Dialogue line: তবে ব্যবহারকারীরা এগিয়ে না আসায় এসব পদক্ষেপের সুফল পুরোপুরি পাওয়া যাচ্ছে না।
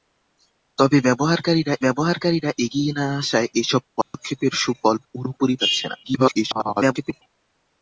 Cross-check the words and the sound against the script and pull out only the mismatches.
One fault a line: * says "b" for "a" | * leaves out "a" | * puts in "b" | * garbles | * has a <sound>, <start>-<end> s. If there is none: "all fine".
* puts in "ব্যবহারকারীরা"
* has a dropout, 4.0-4.1 s
* leaves out "পাওয়া"
* garbles